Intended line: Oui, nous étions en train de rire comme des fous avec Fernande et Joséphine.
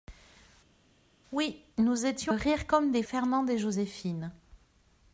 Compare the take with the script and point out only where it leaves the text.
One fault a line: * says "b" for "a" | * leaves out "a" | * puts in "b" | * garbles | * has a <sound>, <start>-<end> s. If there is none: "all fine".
* leaves out "en train de"
* leaves out "fous avec"